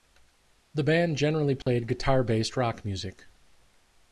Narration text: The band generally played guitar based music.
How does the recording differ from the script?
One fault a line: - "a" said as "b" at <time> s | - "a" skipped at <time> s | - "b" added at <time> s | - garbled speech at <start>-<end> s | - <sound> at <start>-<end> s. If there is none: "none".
- dropout at 1.6-1.7 s
- "rock" added at 2.6 s